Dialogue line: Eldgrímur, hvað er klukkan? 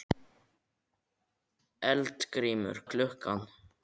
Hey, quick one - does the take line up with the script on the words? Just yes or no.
no